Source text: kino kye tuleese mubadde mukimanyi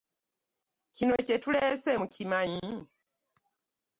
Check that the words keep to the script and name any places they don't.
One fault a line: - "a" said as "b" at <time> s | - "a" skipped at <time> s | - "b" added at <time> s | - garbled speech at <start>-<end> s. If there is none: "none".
- "mubadde" skipped at 1.9 s